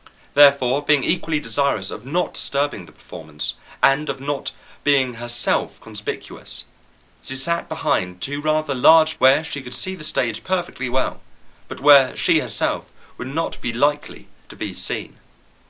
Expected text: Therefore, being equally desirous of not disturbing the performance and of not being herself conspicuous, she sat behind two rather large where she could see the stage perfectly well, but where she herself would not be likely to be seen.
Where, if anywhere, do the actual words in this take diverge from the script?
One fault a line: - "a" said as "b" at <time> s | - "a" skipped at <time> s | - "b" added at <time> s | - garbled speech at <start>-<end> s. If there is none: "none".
none